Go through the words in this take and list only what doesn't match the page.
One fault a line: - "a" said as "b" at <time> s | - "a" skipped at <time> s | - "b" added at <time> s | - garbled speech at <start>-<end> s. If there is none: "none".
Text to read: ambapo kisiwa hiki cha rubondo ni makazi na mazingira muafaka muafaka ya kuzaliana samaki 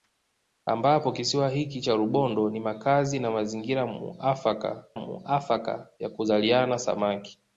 none